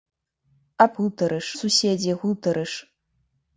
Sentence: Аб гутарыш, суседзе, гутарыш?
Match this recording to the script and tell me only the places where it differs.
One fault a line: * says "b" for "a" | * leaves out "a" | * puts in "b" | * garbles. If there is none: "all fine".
all fine